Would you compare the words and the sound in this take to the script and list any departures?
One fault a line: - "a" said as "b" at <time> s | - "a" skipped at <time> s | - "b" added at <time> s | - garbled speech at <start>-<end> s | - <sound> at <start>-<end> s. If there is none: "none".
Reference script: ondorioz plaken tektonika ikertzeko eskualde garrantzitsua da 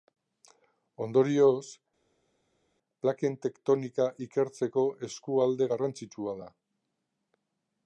none